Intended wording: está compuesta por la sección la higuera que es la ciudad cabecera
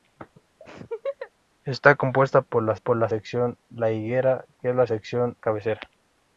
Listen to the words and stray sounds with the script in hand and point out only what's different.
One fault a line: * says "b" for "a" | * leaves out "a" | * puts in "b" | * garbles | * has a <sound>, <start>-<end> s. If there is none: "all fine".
* has a laugh, 0.6-1.3 s
* puts in "por la"
* says "sección" for "ciudad"